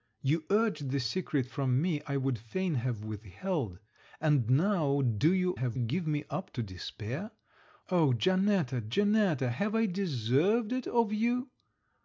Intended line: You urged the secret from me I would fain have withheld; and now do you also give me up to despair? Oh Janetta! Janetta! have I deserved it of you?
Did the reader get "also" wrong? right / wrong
wrong